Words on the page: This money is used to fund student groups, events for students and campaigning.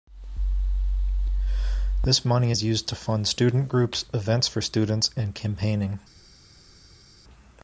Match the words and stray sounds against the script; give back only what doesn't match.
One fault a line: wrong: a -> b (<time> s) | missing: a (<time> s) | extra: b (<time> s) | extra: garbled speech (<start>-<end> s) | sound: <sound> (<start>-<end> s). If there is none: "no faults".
no faults